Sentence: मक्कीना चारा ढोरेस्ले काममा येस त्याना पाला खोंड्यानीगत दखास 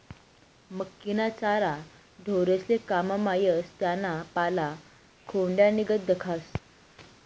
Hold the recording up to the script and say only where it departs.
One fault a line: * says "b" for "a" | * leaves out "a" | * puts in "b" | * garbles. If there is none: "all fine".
all fine